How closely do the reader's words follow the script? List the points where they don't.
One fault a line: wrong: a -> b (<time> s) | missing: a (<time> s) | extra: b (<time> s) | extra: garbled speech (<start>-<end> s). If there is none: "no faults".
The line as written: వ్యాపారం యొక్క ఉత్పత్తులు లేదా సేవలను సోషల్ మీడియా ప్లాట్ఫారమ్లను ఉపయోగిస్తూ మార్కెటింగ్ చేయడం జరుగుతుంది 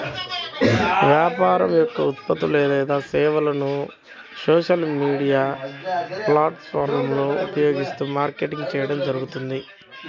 no faults